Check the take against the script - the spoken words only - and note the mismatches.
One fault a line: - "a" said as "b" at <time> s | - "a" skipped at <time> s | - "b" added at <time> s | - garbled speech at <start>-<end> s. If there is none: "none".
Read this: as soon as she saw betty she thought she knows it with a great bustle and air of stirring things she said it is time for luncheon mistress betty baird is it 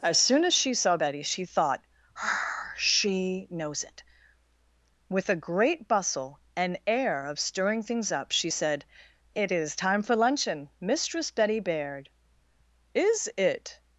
- "up" added at 8.1 s